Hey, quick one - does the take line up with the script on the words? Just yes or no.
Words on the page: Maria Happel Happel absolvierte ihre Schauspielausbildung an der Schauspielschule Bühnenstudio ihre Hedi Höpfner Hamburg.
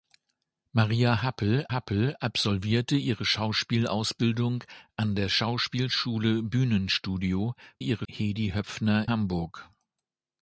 yes